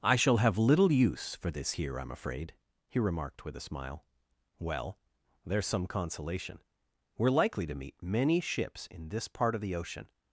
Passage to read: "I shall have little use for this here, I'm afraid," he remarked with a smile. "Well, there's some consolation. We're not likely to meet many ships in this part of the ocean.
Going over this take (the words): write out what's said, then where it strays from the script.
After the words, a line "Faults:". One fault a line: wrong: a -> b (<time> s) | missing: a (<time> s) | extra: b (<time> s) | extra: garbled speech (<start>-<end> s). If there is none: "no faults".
"I shall have little use for this here, I'm afraid," he remarked with a smile. "Well, there's some consolation. We're likely to meet many ships in this part of the ocean.
Faults:
missing: not (7.3 s)